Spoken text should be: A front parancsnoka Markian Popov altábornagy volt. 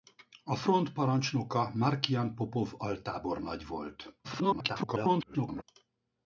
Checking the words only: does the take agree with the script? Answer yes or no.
no